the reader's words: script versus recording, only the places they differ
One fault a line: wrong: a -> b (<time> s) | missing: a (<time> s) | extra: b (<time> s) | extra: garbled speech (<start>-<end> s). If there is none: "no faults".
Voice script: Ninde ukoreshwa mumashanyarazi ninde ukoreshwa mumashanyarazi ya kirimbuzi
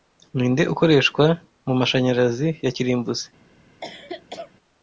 missing: ninde ukoreshwa mumashanyarazi (2.5 s)